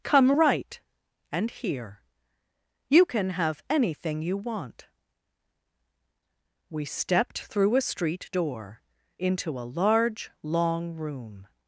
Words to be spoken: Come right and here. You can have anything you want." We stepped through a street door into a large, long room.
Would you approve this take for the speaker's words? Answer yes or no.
yes